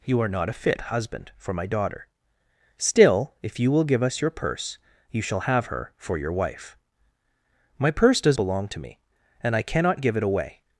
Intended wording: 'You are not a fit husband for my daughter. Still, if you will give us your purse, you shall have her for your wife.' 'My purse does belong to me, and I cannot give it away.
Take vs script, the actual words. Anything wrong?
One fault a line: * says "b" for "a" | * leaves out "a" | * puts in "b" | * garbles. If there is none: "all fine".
all fine